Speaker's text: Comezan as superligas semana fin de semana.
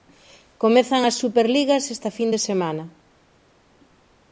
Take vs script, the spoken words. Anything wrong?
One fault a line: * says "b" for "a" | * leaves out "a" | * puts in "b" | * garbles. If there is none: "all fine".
* says "esta" for "semana"